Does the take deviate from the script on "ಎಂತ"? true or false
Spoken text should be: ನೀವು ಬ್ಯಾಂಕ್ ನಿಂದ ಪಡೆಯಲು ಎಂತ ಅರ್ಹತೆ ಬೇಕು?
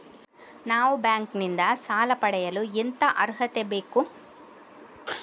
false